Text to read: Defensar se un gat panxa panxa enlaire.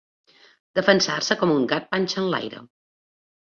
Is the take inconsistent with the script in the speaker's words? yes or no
yes